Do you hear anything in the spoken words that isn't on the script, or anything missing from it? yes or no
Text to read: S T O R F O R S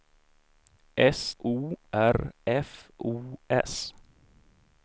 yes